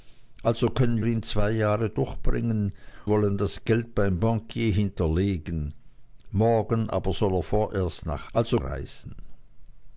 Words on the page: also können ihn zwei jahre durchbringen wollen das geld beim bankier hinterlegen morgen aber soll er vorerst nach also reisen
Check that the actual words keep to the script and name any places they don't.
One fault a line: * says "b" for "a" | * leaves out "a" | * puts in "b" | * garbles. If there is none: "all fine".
all fine